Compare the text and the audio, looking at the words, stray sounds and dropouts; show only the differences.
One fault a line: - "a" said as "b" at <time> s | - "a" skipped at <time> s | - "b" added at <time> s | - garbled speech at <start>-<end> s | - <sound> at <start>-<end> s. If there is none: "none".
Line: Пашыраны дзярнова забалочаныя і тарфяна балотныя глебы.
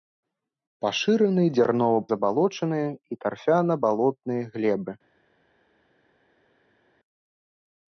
none